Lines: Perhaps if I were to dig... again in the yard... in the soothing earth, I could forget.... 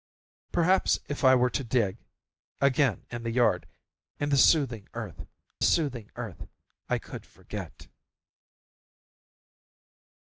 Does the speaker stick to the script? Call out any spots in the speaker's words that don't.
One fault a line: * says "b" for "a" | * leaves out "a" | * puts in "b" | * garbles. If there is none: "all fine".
* puts in "soothing earth"